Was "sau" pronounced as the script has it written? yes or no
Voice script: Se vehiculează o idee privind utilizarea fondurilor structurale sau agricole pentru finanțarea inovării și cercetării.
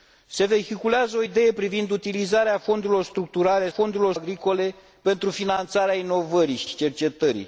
no